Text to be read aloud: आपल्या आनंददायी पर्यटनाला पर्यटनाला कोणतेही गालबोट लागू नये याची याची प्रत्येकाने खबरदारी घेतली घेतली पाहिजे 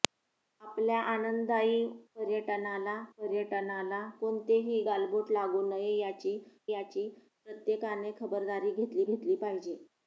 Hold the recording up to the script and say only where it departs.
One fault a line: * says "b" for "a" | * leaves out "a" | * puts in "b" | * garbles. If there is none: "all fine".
all fine